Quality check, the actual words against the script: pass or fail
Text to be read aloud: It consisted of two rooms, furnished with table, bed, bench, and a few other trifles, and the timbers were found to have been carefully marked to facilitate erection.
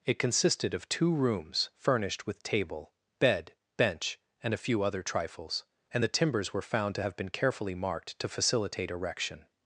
pass